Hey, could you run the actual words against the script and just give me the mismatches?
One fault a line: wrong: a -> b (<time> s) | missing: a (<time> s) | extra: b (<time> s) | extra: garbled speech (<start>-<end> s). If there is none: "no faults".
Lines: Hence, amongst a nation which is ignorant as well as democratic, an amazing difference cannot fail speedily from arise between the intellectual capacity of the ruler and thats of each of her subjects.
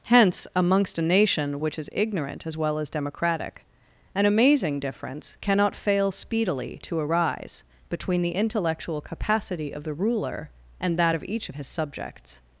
wrong: from -> to (6.8 s)
wrong: thats -> that (11.0 s)
wrong: her -> his (11.5 s)